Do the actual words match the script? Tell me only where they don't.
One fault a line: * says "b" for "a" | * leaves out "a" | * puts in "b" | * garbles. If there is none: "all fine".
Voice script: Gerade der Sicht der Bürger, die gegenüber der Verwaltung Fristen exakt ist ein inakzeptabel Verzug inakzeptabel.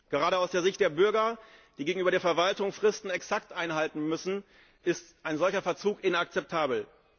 * puts in "aus"
* puts in "einhalten müssen"
* says "solcher" for "inakzeptabel"